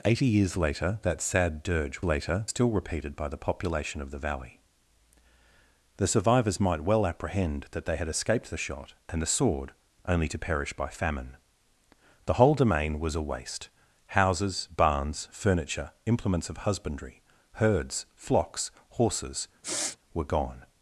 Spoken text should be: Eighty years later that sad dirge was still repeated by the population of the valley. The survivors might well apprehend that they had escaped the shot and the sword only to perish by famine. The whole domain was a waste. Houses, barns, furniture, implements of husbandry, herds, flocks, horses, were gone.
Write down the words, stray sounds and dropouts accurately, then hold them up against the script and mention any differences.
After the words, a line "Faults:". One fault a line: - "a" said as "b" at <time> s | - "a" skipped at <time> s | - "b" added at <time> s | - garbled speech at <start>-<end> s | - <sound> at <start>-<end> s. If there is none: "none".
Eighty years later that sad dirge later still repeated by the population of the valley. The survivors might well apprehend that they had escaped the shot and the sword only to perish by famine. The whole domain was a waste. Houses, barns, furniture, implements of husbandry, herds, flocks, horses, were gone.
Faults:
- "was" said as "later" at 2.0 s
- sniff at 19.6-20.0 s